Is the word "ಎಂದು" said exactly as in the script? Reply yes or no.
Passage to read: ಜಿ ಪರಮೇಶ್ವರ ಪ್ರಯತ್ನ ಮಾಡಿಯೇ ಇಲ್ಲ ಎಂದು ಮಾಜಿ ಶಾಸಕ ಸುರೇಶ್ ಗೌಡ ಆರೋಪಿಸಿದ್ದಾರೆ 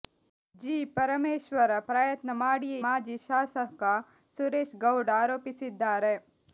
no